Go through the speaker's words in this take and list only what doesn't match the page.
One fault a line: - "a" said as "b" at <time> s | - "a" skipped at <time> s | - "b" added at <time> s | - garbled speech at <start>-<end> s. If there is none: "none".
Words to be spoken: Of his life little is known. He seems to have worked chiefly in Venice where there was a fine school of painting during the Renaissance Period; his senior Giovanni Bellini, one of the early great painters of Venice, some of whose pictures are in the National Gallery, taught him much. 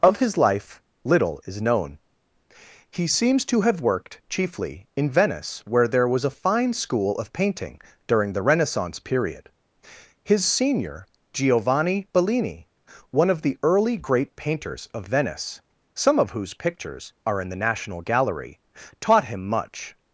none